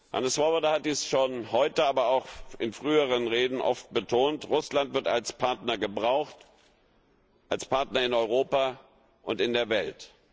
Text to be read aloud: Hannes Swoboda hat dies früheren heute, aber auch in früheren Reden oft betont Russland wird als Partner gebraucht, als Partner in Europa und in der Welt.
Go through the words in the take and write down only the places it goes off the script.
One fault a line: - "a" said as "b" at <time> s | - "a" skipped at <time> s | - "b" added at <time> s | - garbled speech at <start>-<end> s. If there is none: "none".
- "früheren" said as "schon" at 1.1 s